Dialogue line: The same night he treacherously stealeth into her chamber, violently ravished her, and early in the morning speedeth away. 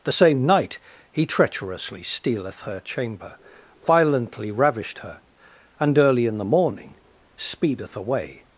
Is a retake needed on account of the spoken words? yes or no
yes